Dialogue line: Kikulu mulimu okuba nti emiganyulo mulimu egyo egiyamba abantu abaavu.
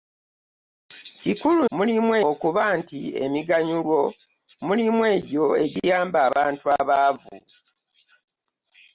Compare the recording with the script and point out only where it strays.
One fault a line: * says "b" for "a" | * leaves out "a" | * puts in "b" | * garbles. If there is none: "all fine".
all fine